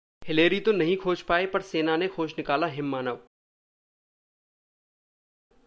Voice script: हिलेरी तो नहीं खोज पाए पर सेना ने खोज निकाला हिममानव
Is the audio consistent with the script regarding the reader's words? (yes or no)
yes